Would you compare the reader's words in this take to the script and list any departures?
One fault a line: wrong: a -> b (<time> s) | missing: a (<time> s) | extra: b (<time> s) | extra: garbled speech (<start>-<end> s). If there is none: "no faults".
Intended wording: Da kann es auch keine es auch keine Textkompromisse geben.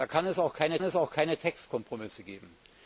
no faults